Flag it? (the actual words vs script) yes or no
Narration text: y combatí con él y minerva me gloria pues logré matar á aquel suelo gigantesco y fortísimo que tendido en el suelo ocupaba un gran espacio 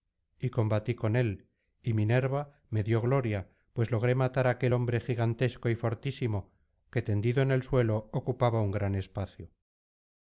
yes